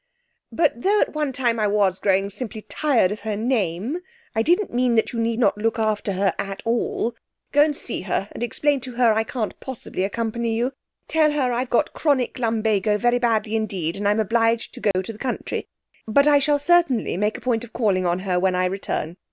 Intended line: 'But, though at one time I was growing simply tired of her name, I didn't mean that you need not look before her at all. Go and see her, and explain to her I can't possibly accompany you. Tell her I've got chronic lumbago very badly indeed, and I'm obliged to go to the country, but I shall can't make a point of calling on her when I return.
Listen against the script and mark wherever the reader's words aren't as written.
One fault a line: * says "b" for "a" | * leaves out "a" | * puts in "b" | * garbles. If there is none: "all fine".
* says "after" for "before"
* says "certainly" for "can't"